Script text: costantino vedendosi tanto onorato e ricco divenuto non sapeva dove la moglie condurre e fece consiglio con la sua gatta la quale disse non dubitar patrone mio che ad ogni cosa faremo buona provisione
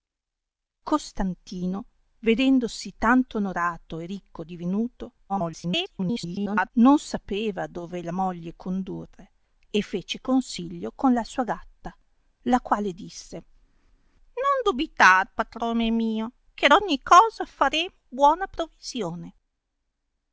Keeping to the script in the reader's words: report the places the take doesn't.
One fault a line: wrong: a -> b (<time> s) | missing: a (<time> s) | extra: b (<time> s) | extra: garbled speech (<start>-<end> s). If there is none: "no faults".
extra: garbled speech (5.3-6.7 s)